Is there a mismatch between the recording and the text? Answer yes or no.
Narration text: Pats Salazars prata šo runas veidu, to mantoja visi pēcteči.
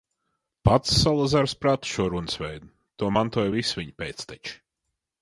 yes